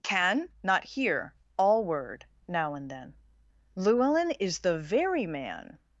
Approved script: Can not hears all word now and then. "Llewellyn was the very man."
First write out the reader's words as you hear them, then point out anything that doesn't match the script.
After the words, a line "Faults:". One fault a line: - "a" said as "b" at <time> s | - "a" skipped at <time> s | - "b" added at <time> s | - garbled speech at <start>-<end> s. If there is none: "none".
Can not hear all word now and then. "Llewellyn is the very man."
Faults:
- "hears" said as "hear" at 0.8 s
- "was" said as "is" at 4.4 s